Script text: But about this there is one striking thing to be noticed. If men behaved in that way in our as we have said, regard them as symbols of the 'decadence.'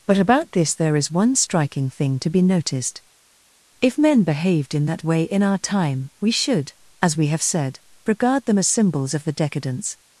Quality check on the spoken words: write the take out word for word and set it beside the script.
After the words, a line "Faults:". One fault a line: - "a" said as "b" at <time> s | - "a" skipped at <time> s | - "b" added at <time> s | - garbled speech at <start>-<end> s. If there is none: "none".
But about this there is one striking thing to be noticed. If men behaved in that way in our time, we should, as we have said, regard them as symbols of the 'decadence.'
Faults:
- "time we should" added at 5.6 s